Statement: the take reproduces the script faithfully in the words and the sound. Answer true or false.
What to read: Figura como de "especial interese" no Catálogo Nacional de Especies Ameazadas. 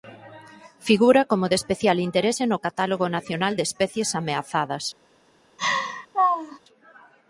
false